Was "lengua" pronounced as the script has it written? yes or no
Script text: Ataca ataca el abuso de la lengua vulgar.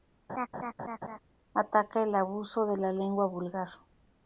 yes